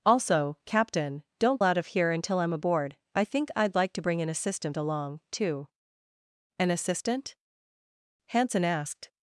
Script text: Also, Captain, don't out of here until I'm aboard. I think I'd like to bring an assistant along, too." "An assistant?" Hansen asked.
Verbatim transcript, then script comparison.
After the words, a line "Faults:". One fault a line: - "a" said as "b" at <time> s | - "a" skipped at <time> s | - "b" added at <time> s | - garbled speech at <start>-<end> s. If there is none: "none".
Also, Captain, don't out of here until I'm aboard. I think I'd like to bring an assistant along, too." "An assistant?" Hansen asked.
Faults:
none